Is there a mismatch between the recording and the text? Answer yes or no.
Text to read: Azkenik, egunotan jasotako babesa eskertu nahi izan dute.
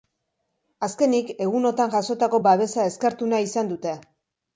no